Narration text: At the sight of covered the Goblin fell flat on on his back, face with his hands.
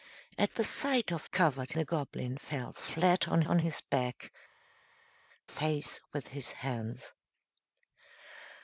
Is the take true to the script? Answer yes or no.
yes